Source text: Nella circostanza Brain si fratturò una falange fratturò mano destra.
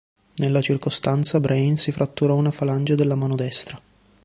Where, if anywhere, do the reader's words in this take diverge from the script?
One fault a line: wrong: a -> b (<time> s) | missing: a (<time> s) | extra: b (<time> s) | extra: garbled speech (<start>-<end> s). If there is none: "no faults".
wrong: fratturò -> della (2.9 s)